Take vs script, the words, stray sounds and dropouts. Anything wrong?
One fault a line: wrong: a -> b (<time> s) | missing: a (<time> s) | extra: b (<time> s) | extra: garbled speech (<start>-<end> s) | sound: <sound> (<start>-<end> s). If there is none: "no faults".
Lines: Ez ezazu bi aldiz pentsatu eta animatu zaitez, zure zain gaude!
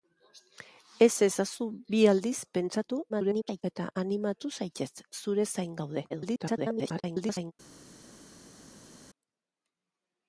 extra: garbled speech (3.1-3.6 s)
extra: garbled speech (6.1-7.5 s)